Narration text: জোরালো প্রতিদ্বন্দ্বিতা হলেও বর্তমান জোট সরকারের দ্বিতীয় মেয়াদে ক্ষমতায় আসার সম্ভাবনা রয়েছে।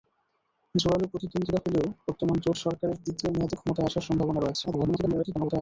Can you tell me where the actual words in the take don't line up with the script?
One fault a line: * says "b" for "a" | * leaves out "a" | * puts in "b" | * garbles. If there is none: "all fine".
* garbles